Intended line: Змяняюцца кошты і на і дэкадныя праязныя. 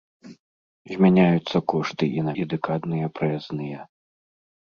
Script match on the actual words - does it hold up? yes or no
yes